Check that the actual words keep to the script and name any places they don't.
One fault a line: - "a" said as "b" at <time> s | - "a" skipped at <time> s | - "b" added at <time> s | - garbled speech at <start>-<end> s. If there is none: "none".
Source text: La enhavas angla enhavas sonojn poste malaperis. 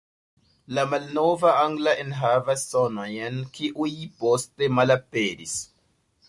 - "enhavas" said as "malnova" at 0.9 s
- "kiuj" added at 3.6 s